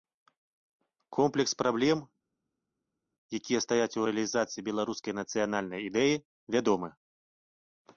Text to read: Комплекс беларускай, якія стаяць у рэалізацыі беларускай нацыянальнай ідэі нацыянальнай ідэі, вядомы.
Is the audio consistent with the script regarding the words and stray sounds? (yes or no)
no